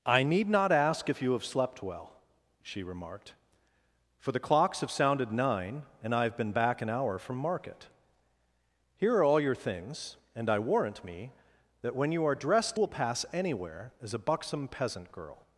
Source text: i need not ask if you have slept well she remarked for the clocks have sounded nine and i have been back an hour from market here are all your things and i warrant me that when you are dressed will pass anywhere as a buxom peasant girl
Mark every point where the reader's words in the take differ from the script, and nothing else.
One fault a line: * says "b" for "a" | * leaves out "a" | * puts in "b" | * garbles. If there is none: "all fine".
all fine